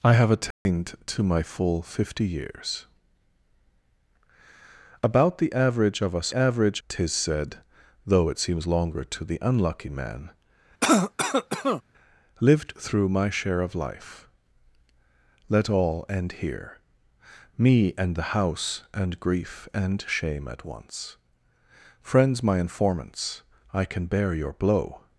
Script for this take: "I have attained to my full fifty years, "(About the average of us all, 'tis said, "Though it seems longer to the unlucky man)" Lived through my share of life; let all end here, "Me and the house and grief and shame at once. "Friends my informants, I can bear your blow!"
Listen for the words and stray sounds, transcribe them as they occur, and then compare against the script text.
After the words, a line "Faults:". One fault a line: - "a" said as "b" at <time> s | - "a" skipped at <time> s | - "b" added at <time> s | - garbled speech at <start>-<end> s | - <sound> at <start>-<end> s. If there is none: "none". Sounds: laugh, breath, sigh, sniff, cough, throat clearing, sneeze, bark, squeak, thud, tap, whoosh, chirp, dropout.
"I have attained to my full fifty years, "(About the average of us average, 'tis said, "Though it seems longer to the unlucky man)" Lived through my share of life; let all end here, "Me and the house and grief and shame at once. "Friends my informants, I can bear your blow!"
Faults:
- dropout at 0.5-0.7 s
- "all" said as "average" at 6.3 s
- cough at 10.8-11.8 s